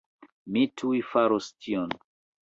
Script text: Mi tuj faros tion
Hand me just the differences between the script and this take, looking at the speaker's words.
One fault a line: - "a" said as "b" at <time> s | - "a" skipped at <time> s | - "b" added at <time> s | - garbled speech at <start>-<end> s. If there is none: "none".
none